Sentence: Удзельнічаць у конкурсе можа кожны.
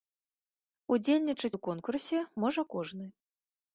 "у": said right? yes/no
yes